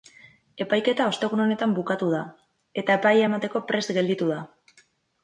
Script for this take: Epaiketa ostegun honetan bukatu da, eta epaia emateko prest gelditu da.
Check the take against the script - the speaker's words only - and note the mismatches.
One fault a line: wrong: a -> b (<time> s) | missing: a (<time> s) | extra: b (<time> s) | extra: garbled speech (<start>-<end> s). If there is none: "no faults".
no faults